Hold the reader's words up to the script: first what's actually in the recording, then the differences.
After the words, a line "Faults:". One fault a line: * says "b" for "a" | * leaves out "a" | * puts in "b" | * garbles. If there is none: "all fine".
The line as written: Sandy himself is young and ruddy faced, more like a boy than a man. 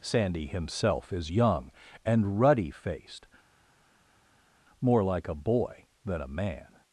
Sandy himself is young and ruddy faced, more like a boy than a man.
Faults:
all fine